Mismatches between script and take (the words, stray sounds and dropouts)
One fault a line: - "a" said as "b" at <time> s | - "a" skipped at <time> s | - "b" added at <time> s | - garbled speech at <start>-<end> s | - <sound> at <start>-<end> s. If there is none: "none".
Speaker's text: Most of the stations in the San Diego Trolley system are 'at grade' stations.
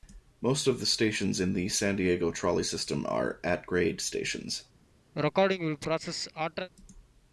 - sneeze at 5.1-6.7 s